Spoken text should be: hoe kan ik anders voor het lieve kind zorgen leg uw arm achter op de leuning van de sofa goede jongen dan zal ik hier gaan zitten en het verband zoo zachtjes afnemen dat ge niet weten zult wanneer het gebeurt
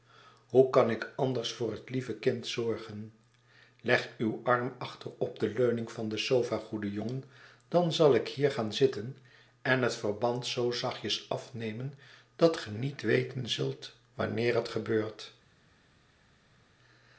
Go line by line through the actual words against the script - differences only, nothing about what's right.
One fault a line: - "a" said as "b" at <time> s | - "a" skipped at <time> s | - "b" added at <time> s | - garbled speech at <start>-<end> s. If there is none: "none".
none